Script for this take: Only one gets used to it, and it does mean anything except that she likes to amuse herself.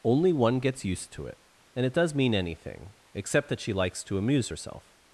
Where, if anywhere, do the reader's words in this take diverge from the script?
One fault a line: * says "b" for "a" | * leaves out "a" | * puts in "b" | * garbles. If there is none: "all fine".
all fine